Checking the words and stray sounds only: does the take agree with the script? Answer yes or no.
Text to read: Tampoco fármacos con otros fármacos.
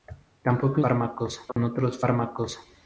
no